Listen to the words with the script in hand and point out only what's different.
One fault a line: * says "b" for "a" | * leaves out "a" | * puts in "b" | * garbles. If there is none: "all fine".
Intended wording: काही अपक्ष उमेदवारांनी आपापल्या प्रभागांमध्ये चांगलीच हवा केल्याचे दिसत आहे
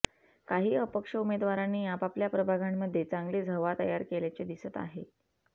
* puts in "तयार"